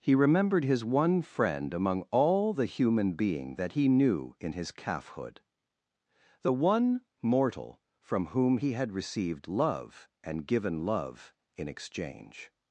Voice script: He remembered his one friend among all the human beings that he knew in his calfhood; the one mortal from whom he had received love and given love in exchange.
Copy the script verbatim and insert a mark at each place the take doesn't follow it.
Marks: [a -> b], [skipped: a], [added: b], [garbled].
He remembered his one friend among all the human [beings -> being] that he knew in his calfhood; the one mortal from whom he had received love and given love in exchange.